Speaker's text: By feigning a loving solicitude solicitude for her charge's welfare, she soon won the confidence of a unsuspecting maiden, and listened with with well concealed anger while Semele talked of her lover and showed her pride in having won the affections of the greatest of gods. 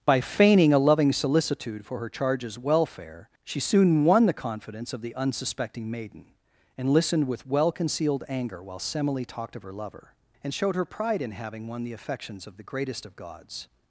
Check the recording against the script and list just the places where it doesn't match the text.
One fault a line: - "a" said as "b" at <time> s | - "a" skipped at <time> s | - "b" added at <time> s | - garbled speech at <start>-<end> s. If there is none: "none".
- "solicitude" skipped at 1.9 s
- "a" said as "the" at 5.0 s
- "with" skipped at 7.5 s